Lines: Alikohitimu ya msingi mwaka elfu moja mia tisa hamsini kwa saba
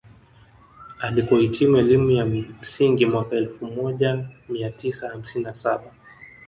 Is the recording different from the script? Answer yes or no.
yes